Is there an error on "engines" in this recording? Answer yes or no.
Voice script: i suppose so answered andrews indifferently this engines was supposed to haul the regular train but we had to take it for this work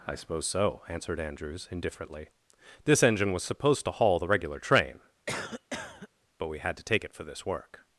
yes